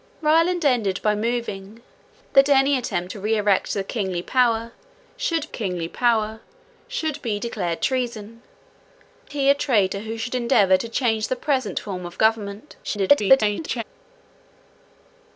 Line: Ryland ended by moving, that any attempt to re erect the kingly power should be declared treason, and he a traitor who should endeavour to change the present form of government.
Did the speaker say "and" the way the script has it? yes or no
no